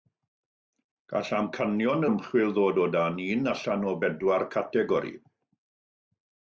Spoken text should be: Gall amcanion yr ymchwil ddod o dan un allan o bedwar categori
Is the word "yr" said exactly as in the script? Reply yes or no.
no